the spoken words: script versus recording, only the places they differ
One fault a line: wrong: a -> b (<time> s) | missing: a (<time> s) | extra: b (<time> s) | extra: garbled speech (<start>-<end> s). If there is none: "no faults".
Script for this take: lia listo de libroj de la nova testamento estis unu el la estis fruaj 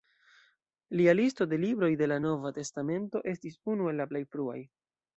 wrong: estis -> plej (4.1 s)